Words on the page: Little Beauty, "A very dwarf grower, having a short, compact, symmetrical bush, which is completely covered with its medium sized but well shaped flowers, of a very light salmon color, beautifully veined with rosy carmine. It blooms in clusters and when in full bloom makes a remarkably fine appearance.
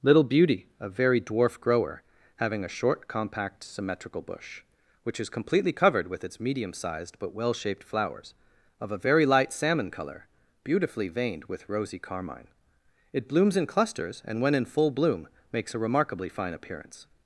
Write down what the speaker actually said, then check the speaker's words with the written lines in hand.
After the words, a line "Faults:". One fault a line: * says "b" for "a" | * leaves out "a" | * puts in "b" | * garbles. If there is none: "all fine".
Little Beauty, "A very dwarf grower, having a short, compact, symmetrical bush, which is completely covered with its medium sized but well shaped flowers, of a very light salmon color, beautifully veined with rosy carmine. It blooms in clusters and when in full bloom makes a remarkably fine appearance.
Faults:
all fine